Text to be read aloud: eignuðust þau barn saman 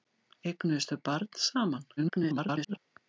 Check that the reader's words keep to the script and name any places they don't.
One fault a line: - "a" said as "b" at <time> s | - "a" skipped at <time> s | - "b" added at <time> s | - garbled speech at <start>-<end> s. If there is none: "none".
- garbled speech at 2.0-2.8 s